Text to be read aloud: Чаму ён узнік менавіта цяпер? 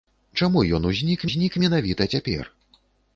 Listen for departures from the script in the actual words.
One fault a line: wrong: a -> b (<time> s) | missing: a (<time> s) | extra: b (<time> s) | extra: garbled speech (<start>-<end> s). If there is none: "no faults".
extra: узнік (1.3 s)